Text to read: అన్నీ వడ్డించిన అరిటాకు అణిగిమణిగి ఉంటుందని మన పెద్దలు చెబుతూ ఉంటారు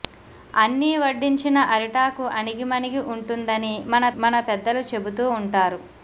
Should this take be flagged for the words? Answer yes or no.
yes